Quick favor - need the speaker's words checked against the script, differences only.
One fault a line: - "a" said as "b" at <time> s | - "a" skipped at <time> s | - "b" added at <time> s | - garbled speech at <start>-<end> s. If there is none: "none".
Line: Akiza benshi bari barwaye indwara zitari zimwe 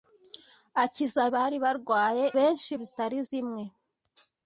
- "benshi" skipped at 1.2 s
- "indwara" said as "benshi" at 2.4 s